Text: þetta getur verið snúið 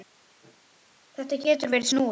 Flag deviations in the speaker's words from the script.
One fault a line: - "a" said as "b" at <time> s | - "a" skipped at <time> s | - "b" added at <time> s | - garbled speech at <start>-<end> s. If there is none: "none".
none